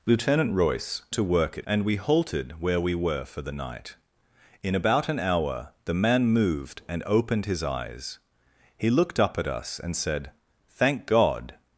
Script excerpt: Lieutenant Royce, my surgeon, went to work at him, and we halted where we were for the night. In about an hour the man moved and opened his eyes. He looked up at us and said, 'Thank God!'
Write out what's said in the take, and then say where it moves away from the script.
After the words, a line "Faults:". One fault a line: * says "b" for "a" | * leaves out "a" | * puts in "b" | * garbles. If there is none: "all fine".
Lieutenant Royce, to work at and we halted where we were for the night. In about an hour the man moved and opened his eyes. He looked up at us and said, 'Thank God!'
Faults:
* leaves out "my surgeon went"
* leaves out "him"